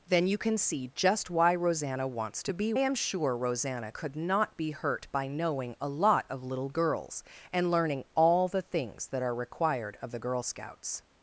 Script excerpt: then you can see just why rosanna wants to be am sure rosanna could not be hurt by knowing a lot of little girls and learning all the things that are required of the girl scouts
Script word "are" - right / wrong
right